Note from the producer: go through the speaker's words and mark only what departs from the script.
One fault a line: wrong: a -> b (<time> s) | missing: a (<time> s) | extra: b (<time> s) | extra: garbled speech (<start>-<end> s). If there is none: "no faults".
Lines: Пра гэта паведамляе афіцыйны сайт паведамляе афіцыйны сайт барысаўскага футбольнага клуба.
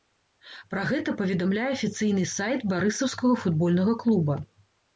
missing: паведамляе афіцыйны сайт (2.7 s)